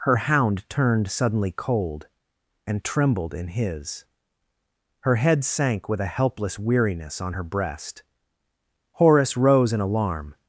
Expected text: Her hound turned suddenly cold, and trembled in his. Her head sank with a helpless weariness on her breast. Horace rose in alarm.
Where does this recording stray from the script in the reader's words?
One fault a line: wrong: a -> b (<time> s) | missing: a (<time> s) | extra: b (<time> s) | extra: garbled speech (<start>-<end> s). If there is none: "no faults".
no faults